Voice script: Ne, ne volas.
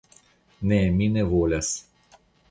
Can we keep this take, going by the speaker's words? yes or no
no